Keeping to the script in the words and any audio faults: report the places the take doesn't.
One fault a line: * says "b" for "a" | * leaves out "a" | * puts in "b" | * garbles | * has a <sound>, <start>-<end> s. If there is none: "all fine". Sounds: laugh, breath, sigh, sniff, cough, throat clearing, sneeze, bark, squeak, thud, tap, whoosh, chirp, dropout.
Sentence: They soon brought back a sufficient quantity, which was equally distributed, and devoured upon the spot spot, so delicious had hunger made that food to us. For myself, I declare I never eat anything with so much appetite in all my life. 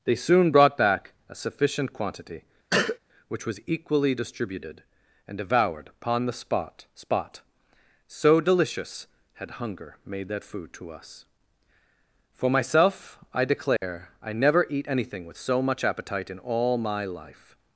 * has a cough, 2.7-3.0 s
* has a dropout, 13.8-13.8 s